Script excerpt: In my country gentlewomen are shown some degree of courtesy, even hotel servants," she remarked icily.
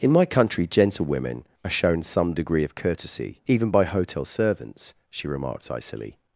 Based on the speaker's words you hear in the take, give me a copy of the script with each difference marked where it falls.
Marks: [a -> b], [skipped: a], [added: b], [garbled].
In my country gentlewomen are shown some degree of courtesy, even [added: by] hotel servants," she remarked icily.